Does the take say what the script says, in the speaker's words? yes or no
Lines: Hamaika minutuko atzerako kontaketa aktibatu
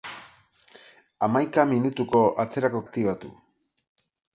no